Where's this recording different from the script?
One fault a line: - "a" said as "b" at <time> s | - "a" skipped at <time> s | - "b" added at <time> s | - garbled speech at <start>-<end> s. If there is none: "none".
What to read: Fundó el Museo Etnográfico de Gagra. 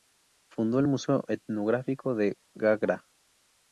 none